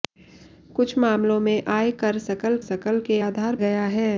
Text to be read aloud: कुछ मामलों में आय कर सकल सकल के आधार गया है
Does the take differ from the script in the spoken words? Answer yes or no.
no